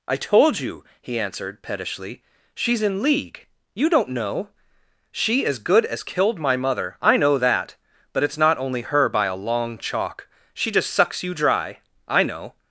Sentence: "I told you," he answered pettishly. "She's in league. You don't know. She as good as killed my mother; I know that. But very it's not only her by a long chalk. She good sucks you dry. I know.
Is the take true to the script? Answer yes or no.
no